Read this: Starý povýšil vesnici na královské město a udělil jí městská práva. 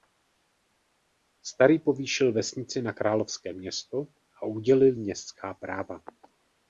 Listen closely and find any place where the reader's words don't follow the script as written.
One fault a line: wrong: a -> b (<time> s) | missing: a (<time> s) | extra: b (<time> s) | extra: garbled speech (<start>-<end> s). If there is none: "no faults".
missing: jí (5.0 s)